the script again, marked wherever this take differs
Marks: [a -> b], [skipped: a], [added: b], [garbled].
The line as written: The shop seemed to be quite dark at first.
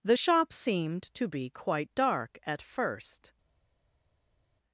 The shop seemed to be quite dark at first.